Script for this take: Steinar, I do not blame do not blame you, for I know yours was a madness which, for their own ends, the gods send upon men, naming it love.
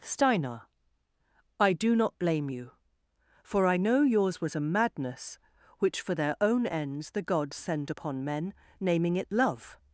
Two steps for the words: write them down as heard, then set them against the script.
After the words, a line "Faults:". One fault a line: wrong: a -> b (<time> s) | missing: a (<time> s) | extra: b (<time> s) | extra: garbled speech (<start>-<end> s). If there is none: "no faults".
Steinar, I do not blame you, for I know yours was a madness which, for their own ends, the gods send upon men, naming it love.
Faults:
missing: do not blame (2.5 s)